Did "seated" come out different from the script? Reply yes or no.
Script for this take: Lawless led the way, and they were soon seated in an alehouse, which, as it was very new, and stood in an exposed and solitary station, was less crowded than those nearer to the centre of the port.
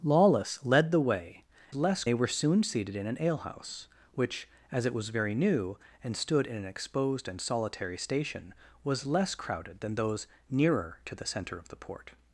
no